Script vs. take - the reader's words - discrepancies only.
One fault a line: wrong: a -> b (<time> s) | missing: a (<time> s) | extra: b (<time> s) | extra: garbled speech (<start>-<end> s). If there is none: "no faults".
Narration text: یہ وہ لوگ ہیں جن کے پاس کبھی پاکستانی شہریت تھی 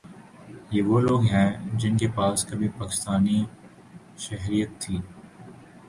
no faults